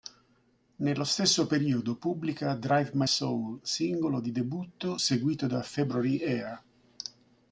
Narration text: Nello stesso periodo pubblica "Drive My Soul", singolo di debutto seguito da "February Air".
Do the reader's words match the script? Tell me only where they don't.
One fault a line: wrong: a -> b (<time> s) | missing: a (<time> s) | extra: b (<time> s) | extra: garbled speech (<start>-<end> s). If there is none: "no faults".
no faults